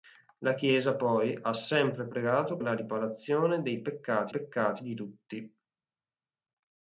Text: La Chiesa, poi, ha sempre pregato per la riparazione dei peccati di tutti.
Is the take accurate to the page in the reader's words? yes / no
no